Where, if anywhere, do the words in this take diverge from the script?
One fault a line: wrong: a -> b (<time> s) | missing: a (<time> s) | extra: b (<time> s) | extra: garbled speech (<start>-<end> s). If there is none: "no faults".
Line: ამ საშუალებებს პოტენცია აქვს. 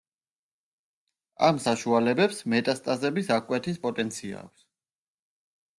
extra: მეტასტაზების აღკვეთის (2.5 s)